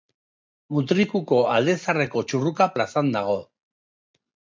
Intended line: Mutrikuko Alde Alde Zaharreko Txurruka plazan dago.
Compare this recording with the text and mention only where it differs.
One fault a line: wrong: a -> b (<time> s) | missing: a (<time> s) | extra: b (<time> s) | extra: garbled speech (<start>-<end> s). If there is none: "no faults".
missing: Alde (1.8 s)